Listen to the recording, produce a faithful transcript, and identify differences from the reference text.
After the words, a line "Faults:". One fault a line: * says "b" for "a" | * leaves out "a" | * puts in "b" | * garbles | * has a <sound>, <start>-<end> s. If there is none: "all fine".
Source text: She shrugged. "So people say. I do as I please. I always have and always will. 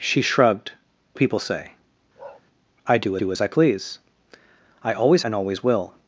She shrugged. "People say. I do do as I please. I always and always will.
Faults:
* leaves out "So"
* has a bark, 2.2-2.4 s
* puts in "do"
* leaves out "have"